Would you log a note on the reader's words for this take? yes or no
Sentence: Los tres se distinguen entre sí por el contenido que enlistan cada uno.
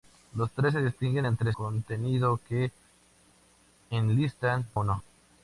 yes